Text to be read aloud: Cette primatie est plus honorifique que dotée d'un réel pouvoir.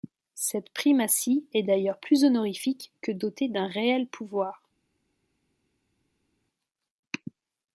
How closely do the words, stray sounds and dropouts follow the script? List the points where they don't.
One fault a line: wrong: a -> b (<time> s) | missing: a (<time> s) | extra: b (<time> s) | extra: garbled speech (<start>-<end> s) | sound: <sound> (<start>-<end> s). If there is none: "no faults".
extra: d'ailleurs (1.6 s)